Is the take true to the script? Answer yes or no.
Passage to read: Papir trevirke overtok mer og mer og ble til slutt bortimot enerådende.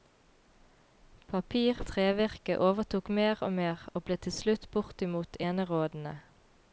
yes